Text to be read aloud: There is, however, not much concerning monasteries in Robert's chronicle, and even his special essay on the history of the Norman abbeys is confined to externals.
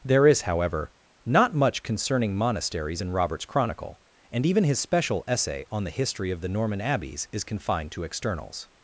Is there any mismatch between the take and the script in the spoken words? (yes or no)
no